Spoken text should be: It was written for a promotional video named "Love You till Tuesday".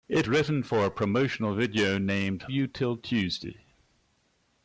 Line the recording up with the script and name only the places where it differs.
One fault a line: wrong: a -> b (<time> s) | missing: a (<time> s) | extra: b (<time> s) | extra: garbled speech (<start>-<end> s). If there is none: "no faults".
missing: was (0.3 s)
missing: Love (2.5 s)